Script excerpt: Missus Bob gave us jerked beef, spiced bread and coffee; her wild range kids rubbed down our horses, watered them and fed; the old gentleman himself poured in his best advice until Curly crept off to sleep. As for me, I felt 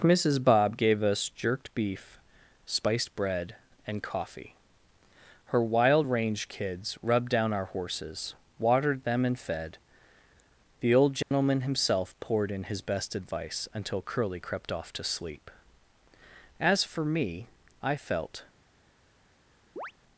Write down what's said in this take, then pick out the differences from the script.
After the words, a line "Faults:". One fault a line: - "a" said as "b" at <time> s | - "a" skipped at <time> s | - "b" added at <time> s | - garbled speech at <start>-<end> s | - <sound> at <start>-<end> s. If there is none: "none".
Missus Bob gave us jerked beef, spiced bread and coffee; her wild range kids rubbed down our horses, watered them and fed; the old gentleman himself poured in his best advice until Curly crept off to sleep. As for me, I felt
Faults:
- dropout at 11.2-11.3 s
- chirp at 19.8-19.9 s